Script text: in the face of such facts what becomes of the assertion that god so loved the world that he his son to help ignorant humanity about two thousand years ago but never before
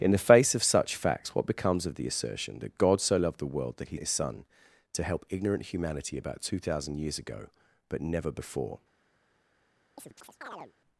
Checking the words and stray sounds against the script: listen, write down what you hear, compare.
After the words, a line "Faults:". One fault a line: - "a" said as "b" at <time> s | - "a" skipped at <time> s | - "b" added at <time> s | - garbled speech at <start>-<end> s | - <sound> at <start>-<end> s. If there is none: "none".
in the face of such facts what becomes of the assertion that god so loved the world that he his son to help ignorant humanity about two thousand years ago but never before
Faults:
- chirp at 10.0-10.7 s